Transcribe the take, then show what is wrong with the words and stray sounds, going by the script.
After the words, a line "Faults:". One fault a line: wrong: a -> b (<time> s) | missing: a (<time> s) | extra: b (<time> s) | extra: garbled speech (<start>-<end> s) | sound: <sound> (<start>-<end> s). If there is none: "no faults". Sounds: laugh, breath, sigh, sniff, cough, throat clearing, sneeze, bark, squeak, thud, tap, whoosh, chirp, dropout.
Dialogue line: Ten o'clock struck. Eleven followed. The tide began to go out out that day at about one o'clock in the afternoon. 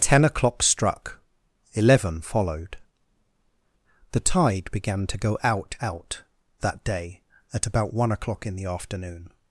Ten o'clock struck. Eleven followed. The tide began to go out out that day at about one o'clock in the afternoon.
Faults:
no faults